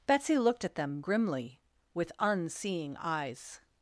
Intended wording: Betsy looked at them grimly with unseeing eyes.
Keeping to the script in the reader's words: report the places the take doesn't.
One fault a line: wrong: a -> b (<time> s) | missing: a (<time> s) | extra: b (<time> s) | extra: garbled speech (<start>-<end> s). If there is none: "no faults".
no faults